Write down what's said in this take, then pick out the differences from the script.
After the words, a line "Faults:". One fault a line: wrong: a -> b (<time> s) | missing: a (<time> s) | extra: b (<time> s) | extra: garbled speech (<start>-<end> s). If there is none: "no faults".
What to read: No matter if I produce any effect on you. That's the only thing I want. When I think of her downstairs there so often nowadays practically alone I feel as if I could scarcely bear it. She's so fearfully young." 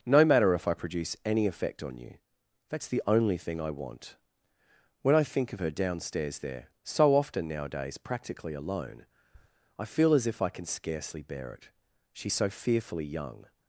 No matter if I produce any effect on you. That's the only thing I want. When I think of her downstairs there so often nowadays practically alone I feel as if I can scarcely bear it. She's so fearfully young."
Faults:
wrong: could -> can (10.5 s)